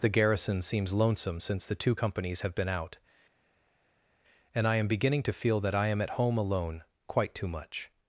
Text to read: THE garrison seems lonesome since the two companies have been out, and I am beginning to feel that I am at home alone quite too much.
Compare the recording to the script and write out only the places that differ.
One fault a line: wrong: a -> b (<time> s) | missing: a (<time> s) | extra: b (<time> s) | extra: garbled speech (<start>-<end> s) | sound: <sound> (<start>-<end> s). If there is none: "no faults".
no faults